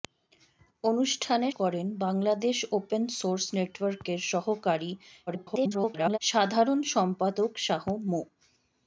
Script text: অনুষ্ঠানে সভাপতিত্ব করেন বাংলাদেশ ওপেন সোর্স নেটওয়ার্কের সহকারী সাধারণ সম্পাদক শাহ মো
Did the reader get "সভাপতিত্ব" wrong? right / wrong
wrong